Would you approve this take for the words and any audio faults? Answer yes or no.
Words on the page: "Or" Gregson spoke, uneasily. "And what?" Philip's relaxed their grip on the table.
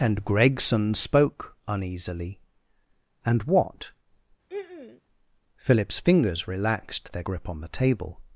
no